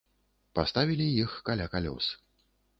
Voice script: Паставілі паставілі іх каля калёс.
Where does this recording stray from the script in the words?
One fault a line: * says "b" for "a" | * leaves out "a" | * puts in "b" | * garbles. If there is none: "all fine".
* leaves out "паставілі"